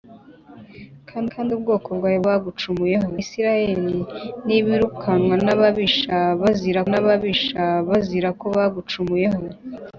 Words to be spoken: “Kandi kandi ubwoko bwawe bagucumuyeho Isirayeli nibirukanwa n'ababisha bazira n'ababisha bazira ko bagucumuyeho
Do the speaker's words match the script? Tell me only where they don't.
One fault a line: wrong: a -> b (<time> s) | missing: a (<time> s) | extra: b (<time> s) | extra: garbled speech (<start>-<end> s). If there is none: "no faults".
no faults